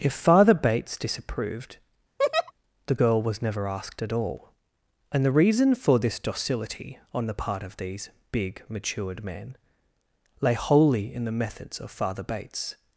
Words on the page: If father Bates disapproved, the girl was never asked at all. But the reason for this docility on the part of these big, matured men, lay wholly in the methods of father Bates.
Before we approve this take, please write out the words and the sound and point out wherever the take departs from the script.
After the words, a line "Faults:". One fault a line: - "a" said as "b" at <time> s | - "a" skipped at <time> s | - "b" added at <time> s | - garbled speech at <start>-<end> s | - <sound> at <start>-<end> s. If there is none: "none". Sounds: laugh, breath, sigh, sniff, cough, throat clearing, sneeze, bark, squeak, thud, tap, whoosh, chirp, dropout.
If father Bates disapproved, the girl was never asked at all. And the reason for this docility on the part of these big, matured men, lay wholly in the methods of father Bates.
Faults:
- laugh at 2.2-2.5 s
- "But" said as "And" at 5.1 s